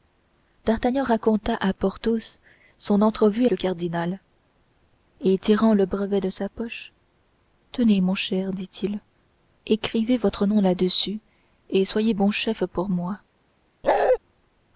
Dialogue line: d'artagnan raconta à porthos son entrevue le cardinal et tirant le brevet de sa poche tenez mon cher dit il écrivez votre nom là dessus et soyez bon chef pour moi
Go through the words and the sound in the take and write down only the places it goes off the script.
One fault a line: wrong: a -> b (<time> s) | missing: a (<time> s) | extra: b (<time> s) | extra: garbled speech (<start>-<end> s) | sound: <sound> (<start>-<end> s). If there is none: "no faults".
sound: bark (13.8-14.2 s)